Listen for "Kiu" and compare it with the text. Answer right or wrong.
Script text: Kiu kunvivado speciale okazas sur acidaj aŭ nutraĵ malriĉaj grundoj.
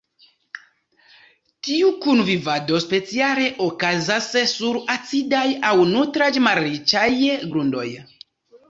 wrong